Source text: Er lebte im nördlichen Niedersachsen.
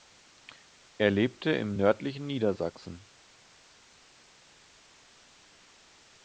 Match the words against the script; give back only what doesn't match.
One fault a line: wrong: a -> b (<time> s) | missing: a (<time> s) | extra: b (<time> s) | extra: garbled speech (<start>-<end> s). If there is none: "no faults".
no faults